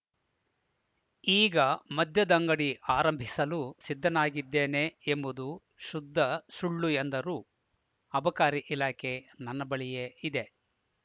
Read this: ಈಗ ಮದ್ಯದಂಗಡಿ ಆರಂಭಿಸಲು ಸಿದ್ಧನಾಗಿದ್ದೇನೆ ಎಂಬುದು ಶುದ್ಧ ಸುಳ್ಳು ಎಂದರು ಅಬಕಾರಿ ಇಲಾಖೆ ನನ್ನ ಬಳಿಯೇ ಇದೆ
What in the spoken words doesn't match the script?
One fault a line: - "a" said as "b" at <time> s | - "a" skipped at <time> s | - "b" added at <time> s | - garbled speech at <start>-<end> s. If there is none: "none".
none